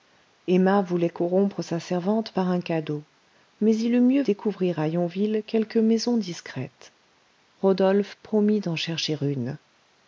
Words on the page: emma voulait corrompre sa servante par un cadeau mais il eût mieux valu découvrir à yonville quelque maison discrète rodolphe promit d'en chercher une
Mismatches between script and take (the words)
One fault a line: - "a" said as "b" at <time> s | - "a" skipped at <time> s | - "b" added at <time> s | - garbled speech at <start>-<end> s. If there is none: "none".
- "valu" skipped at 4.2 s